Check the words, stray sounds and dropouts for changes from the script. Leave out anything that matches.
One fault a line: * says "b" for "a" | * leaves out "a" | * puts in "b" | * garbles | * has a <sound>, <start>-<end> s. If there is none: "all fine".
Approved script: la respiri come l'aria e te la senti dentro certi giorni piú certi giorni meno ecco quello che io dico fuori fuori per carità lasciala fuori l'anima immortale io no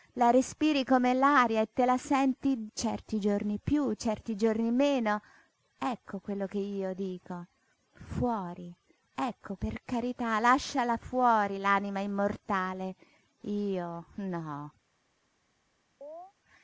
* leaves out "dentro"
* says "ecco" for "fuori"
* has a chirp, 16.0-16.3 s